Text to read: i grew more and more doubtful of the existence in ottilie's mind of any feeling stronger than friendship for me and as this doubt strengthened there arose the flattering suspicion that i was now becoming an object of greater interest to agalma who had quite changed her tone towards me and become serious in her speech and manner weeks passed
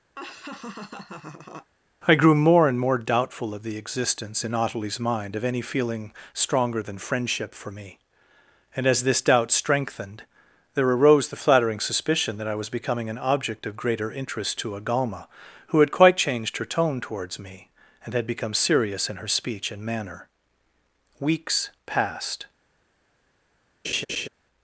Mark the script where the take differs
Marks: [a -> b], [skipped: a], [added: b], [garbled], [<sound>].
[laugh] i grew more and more doubtful of the existence in ottilie's mind of any feeling stronger than friendship for me and as this doubt strengthened there arose the flattering suspicion that i was [skipped: now] becoming an object of greater interest to agalma who had quite changed her tone towards me and [added: had] become serious in her speech and manner weeks passed [laugh]